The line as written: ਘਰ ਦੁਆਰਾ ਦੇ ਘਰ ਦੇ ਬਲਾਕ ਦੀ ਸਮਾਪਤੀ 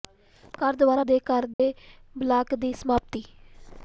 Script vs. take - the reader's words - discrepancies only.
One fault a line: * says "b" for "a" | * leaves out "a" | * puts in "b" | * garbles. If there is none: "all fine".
all fine